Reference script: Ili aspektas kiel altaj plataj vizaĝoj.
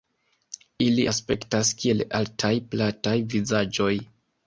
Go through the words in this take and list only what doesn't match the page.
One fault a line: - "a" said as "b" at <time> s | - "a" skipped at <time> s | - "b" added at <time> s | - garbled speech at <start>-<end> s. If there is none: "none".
none